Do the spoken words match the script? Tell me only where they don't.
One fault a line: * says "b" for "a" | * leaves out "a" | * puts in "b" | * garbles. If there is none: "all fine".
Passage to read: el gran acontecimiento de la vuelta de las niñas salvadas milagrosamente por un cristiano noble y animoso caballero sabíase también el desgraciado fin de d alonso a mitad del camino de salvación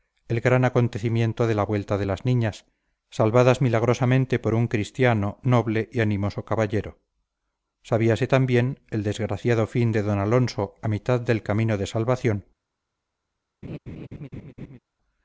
all fine